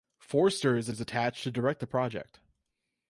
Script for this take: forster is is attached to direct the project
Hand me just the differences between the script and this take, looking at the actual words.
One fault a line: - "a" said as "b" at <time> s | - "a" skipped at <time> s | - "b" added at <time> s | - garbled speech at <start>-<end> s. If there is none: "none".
none